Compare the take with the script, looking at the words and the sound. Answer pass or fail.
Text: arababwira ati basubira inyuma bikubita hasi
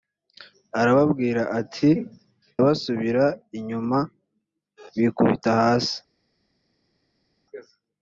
pass